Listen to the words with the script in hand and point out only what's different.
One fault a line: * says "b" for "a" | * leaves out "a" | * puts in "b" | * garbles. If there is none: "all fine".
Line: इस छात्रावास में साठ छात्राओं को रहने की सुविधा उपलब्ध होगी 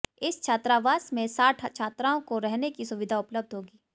all fine